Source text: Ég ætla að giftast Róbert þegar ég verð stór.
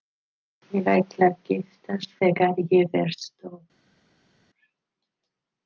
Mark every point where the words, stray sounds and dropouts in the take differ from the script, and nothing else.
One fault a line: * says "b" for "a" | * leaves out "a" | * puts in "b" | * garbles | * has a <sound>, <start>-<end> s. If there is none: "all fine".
* leaves out "Róbert"